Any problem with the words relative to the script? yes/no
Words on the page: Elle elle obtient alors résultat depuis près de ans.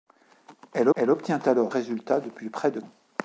no